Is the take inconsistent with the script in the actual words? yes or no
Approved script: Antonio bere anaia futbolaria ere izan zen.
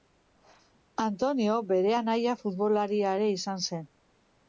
no